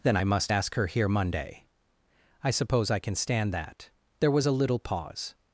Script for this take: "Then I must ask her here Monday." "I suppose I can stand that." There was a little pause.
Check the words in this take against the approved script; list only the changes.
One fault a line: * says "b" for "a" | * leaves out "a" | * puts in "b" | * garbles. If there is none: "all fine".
all fine